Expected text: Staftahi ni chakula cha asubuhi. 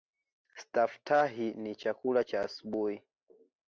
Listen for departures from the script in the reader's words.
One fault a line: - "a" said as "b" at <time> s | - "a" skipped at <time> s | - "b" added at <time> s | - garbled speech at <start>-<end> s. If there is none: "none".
none